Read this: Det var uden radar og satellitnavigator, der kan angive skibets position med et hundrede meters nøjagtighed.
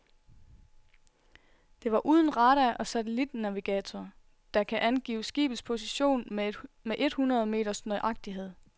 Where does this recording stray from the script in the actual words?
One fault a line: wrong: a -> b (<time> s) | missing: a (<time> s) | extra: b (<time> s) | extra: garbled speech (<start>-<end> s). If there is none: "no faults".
no faults